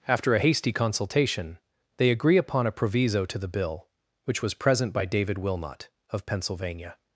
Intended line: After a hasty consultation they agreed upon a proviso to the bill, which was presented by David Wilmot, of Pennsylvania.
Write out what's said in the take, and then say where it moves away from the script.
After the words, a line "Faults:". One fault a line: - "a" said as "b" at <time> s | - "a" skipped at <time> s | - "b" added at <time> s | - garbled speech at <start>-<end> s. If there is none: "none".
After a hasty consultation they agree upon a proviso to the bill, which was present by David Wilmot, of Pennsylvania.
Faults:
- "agreed" said as "agree" at 2.1 s
- "presented" said as "present" at 4.5 s